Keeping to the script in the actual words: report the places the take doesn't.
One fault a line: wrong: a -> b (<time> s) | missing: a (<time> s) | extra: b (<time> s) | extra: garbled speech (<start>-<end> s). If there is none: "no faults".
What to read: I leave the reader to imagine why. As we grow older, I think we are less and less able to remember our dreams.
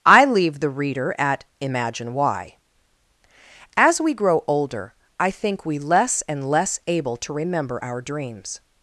wrong: to -> at (1.2 s)
missing: are (5.8 s)